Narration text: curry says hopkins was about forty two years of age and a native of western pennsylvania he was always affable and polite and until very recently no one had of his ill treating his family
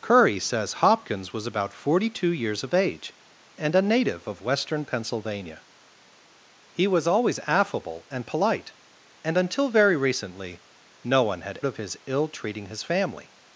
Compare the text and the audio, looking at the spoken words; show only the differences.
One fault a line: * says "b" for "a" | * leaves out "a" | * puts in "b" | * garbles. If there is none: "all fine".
all fine